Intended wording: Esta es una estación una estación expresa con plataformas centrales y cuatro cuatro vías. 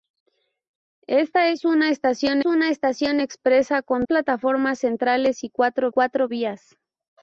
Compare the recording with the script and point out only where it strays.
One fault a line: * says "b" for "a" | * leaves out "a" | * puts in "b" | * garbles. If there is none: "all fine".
all fine